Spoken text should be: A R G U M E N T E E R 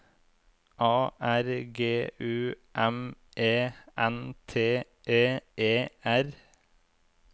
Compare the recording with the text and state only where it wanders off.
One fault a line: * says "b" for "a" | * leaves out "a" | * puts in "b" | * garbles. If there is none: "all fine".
all fine